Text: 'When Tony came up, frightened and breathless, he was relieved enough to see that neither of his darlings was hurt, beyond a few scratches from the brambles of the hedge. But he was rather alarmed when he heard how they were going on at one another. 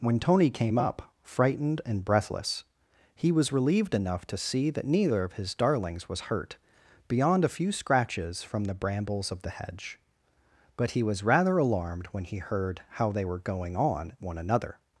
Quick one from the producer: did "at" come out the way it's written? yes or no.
no